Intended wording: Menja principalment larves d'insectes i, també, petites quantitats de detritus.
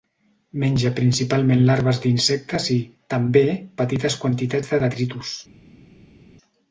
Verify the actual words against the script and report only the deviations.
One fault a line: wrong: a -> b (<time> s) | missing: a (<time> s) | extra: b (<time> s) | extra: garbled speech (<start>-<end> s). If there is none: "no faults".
no faults